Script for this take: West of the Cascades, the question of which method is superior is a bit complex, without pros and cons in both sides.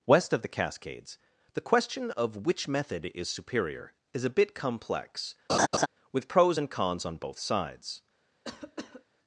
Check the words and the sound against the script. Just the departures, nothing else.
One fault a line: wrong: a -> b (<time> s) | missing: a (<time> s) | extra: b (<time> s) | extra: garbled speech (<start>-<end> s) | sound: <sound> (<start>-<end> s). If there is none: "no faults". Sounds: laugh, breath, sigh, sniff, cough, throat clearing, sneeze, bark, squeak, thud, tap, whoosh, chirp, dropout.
sound: laugh (5.5-5.9 s)
wrong: without -> with (6.1 s)
wrong: in -> on (7.0 s)
sound: cough (8.4-9.1 s)